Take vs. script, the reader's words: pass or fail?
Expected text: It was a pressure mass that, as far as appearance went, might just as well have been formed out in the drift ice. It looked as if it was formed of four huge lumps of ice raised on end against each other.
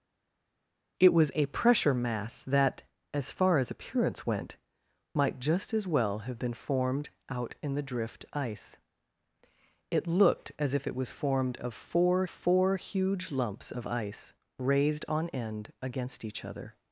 fail